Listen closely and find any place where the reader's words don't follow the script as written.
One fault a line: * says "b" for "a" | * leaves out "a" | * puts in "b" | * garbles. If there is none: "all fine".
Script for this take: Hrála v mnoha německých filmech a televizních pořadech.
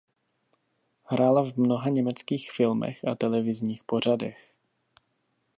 all fine